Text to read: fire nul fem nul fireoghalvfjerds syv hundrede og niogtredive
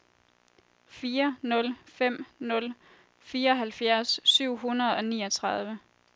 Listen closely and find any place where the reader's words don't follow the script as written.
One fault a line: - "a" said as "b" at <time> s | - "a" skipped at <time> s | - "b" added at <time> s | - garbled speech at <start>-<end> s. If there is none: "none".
none